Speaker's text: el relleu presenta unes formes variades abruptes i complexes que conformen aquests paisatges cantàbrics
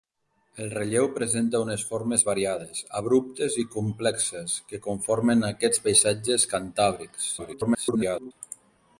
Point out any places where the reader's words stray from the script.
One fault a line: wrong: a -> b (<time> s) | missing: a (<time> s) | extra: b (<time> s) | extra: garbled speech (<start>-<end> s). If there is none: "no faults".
extra: garbled speech (7.4-8.3 s)